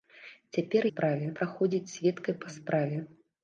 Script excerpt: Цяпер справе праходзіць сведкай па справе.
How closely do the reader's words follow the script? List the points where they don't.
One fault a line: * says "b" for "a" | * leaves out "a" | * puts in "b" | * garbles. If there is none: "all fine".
all fine